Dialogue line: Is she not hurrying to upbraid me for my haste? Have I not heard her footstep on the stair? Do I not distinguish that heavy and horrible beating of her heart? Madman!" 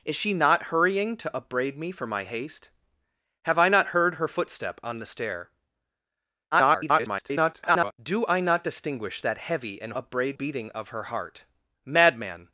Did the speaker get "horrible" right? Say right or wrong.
wrong